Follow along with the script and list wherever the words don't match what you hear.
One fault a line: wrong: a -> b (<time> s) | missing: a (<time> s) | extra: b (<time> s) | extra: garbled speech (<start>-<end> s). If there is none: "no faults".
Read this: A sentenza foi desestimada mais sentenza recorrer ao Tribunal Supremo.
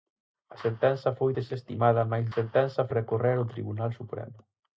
no faults